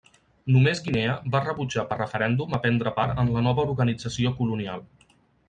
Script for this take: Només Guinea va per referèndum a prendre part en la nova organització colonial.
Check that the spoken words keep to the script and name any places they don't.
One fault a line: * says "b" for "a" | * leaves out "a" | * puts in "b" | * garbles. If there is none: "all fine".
* puts in "rebutjar"